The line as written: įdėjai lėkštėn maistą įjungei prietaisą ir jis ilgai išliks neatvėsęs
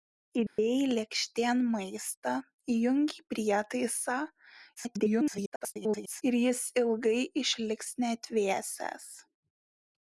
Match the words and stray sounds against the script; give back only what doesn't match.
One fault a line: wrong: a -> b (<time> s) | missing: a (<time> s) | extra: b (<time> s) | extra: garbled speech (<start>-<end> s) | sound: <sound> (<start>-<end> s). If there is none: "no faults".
sound: dropout (0.5-0.6 s)
extra: garbled speech (4.8-6.2 s)